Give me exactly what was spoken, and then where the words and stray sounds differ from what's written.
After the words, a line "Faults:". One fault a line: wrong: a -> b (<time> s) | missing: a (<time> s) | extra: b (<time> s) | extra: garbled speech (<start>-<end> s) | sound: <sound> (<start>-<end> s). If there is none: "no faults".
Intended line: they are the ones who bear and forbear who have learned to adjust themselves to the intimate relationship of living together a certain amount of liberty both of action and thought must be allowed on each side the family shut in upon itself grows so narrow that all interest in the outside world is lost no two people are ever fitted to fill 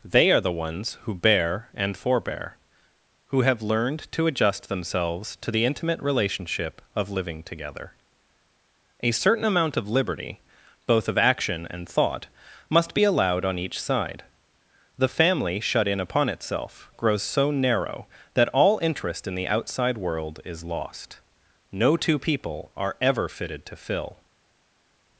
they are the ones who bear and forbear who have learned to adjust themselves to the intimate relationship of living together a certain amount of liberty both of action and thought must be allowed on each side the family shut in upon itself grows so narrow that all interest in the outside world is lost no two people are ever fitted to fill
Faults:
no faults